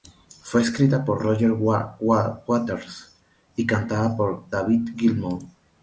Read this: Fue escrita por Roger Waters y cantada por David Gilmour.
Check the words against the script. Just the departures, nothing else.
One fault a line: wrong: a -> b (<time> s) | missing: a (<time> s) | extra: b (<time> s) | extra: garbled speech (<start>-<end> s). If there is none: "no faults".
no faults